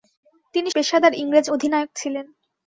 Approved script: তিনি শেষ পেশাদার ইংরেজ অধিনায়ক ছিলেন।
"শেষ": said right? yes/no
no